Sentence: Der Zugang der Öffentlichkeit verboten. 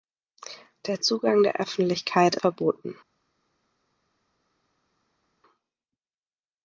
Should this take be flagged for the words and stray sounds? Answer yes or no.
no